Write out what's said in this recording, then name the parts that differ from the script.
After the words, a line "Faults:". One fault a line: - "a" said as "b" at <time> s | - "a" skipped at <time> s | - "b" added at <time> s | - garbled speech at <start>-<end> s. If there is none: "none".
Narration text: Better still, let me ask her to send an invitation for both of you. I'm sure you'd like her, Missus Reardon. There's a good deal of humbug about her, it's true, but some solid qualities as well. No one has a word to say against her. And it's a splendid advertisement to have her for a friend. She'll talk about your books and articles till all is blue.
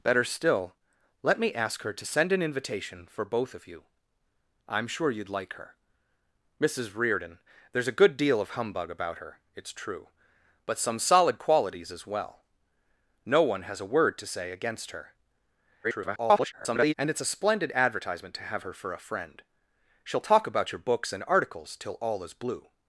Better still, let me ask her to send an invitation for both of you. I'm sure you'd like her, Missus Reardon. There's a good deal of humbug about her, it's true, but some solid qualities as well. No one has a word to say against her. [garbled] And it's a splendid advertisement to have her for a friend. She'll talk about your books and articles till all is blue.
Faults:
- garbled speech at 15.8-16.9 s